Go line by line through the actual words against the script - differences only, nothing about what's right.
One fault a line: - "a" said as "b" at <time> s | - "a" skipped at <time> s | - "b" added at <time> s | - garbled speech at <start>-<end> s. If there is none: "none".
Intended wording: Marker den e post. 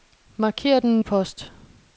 none